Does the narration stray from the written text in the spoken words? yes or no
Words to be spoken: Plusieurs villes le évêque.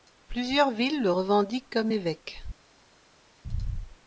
yes